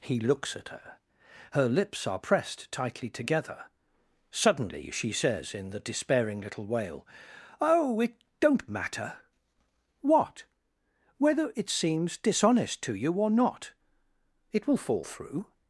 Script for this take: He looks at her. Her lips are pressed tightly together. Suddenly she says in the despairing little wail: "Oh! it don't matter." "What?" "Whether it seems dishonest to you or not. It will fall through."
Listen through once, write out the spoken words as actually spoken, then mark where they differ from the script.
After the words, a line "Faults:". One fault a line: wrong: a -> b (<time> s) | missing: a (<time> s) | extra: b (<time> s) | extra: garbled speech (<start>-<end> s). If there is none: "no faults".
He looks at her. Her lips are pressed tightly together. Suddenly she says in the despairing little wail: "Oh! it don't matter." "What?" "Whether it seems dishonest to you or not. It will fall through."
Faults:
no faults